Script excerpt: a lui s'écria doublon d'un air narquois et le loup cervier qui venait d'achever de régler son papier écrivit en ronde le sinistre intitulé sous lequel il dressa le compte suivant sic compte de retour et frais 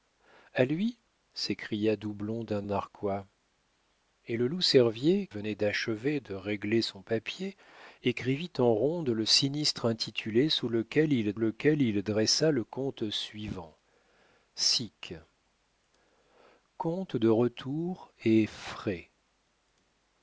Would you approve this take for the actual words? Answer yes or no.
no